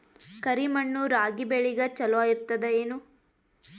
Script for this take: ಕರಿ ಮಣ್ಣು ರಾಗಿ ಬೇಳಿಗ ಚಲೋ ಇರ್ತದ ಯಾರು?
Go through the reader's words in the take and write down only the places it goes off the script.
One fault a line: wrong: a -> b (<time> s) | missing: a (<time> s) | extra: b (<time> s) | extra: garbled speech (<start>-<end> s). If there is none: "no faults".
wrong: ಯಾರು -> ಏನು (2.8 s)